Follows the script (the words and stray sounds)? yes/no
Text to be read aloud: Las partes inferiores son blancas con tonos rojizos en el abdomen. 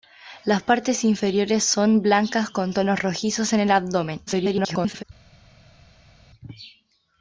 no